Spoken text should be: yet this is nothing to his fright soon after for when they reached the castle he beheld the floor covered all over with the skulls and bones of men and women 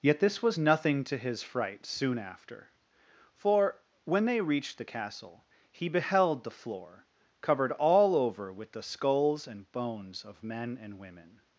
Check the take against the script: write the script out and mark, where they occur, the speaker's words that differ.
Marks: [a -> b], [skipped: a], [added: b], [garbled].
yet this [is -> was] nothing to his fright soon after for when they reached the castle he beheld the floor covered all over with the skulls and bones of men and women